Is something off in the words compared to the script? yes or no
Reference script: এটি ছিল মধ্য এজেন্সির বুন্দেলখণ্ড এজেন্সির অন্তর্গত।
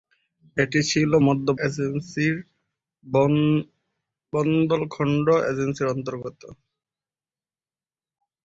no